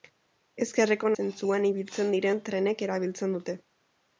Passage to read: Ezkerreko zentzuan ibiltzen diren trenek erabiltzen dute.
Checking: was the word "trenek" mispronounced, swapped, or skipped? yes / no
no